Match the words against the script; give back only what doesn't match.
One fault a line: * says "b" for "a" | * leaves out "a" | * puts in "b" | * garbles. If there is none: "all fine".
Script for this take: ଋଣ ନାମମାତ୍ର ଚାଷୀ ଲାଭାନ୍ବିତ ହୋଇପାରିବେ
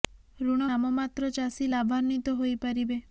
all fine